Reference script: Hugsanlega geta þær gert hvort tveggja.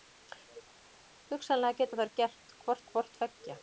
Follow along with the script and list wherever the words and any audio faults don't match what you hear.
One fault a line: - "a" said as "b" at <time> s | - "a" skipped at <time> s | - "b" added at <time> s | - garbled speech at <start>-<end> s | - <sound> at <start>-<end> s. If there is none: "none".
- "hvort" added at 2.9 s